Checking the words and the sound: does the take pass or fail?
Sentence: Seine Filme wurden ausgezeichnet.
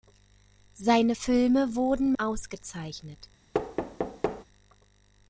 fail